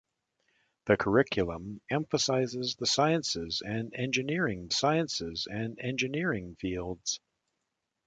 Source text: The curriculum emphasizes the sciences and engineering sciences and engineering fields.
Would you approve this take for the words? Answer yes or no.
yes